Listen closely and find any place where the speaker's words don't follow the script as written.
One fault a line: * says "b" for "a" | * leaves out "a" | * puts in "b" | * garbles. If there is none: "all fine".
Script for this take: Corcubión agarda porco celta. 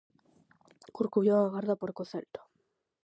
all fine